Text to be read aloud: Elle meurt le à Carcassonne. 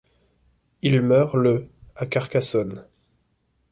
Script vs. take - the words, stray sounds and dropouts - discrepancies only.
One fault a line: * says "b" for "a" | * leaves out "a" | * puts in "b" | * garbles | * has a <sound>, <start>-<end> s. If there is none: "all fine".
* says "Il" for "Elle"